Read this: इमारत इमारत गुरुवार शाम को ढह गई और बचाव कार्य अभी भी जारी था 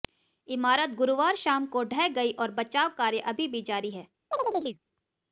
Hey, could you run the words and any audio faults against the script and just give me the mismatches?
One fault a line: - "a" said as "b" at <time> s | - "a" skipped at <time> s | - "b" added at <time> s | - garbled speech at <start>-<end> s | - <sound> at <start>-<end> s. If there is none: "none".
- "इमारत" skipped at 0.9 s
- "था" said as "है" at 3.9 s
- chirp at 4.3-4.8 s